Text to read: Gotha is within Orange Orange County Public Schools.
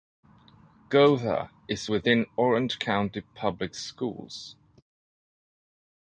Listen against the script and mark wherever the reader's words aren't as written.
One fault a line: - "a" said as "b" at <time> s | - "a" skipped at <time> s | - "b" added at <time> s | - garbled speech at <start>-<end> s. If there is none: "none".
- "Orange" skipped at 2.8 s